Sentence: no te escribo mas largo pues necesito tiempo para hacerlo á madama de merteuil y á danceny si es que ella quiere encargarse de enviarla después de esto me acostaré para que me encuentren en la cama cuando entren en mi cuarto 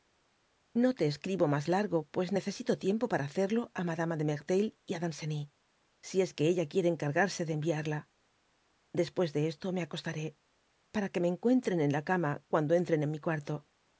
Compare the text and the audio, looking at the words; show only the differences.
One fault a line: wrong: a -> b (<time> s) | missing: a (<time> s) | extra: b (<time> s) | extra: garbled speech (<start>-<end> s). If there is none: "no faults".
no faults